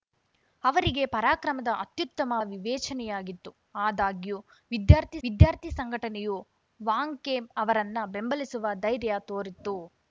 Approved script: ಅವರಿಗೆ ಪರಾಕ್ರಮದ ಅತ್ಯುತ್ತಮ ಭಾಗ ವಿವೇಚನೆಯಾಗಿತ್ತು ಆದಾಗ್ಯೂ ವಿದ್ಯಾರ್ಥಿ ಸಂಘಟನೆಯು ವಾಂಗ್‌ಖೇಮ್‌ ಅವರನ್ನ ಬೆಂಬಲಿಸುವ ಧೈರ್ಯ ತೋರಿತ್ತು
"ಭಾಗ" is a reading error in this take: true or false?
true